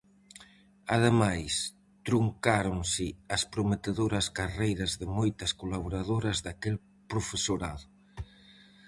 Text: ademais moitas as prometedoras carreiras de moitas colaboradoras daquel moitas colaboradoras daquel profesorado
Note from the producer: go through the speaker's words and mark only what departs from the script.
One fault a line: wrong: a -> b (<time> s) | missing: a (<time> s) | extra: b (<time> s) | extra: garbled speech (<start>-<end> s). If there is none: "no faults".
wrong: moitas -> truncáronse (2.1 s)
missing: moitas colaboradoras daquel (6.8 s)